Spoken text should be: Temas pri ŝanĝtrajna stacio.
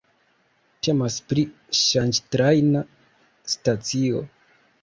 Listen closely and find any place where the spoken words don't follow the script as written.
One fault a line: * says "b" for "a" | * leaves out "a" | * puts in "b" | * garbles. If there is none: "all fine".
all fine